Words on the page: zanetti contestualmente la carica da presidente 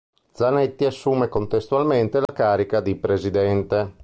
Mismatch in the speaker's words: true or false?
true